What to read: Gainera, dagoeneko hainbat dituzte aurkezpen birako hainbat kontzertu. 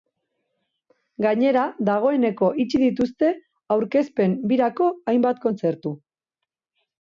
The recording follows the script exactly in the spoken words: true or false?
false